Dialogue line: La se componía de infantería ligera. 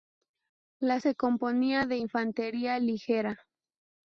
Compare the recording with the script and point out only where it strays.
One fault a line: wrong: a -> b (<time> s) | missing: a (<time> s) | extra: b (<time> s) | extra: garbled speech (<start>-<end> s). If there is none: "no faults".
no faults